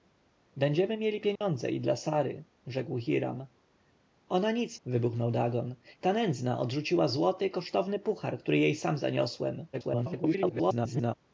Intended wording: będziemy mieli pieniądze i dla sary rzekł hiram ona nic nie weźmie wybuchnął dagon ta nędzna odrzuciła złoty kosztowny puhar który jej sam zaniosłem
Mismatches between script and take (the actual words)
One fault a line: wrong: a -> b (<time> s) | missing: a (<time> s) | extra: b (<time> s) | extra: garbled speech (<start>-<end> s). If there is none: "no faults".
missing: nie weźmie (4.8 s)
extra: garbled speech (9.7-11.1 s)